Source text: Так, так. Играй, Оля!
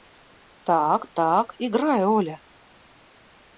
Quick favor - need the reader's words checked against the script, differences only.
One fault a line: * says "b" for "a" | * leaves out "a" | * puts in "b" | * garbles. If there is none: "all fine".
all fine